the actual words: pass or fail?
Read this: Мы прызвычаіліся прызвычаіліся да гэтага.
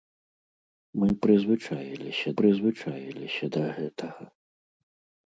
pass